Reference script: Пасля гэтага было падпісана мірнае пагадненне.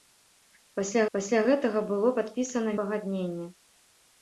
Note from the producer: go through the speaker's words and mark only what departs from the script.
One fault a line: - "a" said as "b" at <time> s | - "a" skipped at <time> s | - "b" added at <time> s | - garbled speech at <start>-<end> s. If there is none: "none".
- "пасля" added at 1.2 s
- "мірнае" skipped at 2.8 s